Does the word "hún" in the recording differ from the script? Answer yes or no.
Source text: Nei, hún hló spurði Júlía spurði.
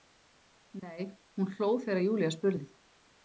no